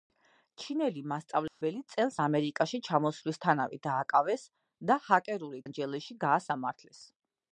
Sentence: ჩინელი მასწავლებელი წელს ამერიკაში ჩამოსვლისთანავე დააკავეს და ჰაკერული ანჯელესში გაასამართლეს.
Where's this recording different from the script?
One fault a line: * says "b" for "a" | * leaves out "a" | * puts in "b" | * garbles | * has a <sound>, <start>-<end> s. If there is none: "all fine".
* has a dropout, 1.5-1.6 s